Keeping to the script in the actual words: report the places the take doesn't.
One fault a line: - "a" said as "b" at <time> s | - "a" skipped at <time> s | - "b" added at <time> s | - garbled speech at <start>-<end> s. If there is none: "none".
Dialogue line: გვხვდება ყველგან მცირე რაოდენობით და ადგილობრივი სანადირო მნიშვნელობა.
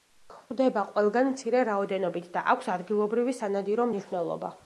- "აქვს" added at 2.5 s